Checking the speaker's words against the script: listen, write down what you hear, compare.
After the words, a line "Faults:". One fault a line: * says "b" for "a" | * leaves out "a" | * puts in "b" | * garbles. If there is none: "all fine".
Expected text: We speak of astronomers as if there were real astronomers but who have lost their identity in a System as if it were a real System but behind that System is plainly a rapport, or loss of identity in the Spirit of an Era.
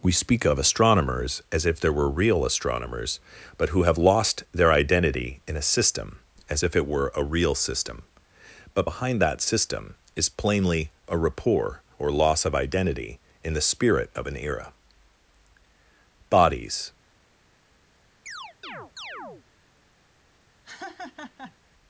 We speak of astronomers as if there were real astronomers but who have lost their identity in a System as if it were a real System but behind that System is plainly a rapport, or loss of identity in the Spirit of an Era. Bodies
Faults:
* puts in "Bodies"